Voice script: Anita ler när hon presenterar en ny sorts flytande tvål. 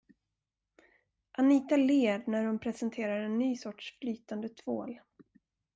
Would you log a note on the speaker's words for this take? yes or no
no